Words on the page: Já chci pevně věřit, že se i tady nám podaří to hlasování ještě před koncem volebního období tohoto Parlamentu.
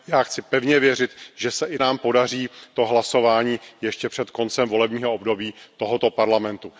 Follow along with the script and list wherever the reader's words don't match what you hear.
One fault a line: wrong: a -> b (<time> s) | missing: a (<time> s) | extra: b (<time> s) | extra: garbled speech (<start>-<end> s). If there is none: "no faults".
missing: tady (1.8 s)